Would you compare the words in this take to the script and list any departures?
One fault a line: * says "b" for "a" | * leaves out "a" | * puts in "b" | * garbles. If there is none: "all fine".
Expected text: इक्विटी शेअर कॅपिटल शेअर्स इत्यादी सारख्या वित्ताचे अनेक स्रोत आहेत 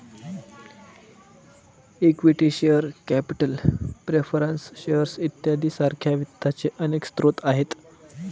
* puts in "प्रेफरन्स"